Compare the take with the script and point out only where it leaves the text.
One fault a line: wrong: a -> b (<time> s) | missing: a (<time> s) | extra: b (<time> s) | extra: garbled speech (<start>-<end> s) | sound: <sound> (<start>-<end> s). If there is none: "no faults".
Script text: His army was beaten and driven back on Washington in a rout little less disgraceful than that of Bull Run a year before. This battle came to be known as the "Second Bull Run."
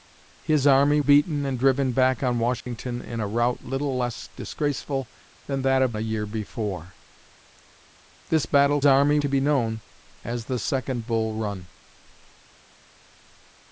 missing: was (1.0 s)
sound: dropout (2.6-2.7 s)
missing: Bull Run (6.0 s)
wrong: came -> army (8.8 s)